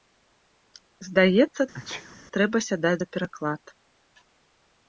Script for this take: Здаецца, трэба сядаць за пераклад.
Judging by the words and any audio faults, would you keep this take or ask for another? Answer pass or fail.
fail